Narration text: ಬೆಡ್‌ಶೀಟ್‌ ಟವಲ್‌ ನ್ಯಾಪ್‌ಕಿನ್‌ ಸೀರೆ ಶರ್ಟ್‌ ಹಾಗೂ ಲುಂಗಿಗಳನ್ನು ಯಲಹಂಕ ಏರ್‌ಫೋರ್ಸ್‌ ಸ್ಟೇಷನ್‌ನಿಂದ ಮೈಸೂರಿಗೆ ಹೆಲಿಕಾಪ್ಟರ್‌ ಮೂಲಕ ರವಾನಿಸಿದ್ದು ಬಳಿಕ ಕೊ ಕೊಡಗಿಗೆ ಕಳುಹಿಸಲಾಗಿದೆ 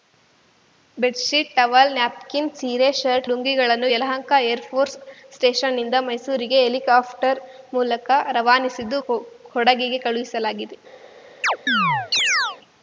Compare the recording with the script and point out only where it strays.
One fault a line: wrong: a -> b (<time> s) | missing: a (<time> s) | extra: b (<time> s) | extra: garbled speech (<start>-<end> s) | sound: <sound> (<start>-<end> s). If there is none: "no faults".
missing: ಹಾಗೂ (3.3 s)
missing: ಬಳಿಕ (9.0 s)
sound: chirp (11.4-12.6 s)